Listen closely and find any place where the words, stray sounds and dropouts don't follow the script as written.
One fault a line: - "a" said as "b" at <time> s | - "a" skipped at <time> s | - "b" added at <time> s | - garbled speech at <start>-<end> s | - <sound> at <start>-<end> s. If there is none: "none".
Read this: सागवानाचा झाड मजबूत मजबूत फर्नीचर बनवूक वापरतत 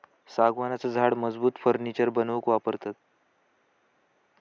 - "मजबूत" skipped at 1.6 s